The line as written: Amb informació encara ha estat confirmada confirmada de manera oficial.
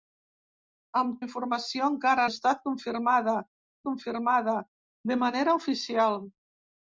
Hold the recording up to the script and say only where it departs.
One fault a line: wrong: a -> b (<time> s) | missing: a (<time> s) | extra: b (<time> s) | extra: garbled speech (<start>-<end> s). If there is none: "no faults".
no faults